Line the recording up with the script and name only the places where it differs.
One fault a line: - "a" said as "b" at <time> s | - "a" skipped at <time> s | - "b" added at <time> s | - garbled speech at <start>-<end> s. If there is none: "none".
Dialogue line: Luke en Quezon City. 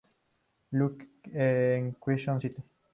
none